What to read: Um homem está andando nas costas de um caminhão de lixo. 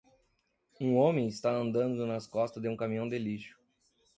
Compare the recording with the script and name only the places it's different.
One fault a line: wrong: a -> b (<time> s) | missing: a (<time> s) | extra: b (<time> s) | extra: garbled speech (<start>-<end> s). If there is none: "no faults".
no faults